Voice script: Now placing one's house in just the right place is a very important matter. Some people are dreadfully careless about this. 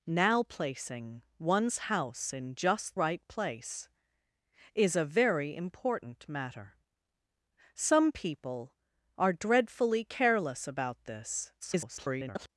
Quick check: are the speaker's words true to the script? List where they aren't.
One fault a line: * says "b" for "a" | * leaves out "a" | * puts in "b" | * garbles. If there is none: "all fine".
* leaves out "the"
* garbles